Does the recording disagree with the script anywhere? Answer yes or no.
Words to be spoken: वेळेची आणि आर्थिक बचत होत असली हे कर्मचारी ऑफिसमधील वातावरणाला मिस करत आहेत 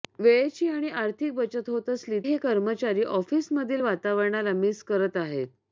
no